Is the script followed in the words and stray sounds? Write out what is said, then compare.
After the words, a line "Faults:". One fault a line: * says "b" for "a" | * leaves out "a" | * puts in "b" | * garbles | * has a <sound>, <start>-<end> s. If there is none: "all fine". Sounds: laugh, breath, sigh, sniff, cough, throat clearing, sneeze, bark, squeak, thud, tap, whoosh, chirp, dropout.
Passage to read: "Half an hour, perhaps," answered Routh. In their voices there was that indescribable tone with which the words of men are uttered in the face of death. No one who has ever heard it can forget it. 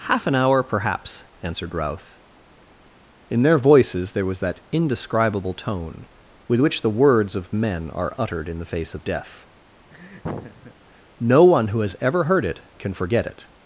"Half an hour, perhaps," answered Routh. In their voices there was that indescribable tone with which the words of men are uttered in the face of death. No one who has ever heard it can forget it.
Faults:
* has a laugh, 9.9-10.7 s